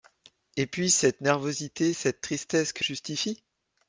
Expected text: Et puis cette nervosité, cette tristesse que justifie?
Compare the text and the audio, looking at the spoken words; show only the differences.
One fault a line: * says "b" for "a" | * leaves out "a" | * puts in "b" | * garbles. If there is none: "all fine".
all fine